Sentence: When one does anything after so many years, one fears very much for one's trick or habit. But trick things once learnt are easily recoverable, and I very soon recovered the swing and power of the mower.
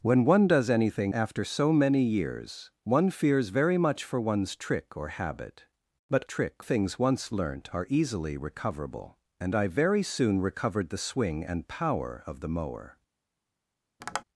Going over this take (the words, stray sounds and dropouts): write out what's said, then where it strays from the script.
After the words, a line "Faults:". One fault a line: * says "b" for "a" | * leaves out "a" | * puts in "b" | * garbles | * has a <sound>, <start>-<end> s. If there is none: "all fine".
When one does anything after so many years, one fears very much for one's trick or habit. But trick things once learnt are easily recoverable, and I very soon recovered the swing and power of the mower.
Faults:
* has a tap, 14.0-14.2 s